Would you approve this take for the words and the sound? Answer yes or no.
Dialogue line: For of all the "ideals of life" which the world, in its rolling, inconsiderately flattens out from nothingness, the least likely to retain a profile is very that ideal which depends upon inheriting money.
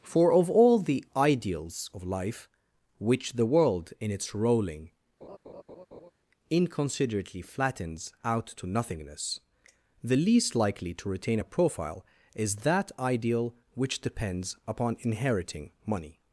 no